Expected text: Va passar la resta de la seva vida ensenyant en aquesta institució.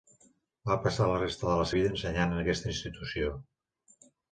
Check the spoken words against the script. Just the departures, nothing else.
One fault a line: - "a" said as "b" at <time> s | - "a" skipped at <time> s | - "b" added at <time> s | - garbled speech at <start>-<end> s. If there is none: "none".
- "seva" skipped at 1.7 s